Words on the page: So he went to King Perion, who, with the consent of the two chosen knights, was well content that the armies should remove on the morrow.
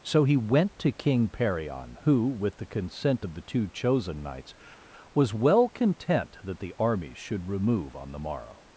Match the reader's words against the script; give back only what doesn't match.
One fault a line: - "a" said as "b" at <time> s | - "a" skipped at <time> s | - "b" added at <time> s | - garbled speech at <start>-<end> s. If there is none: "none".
none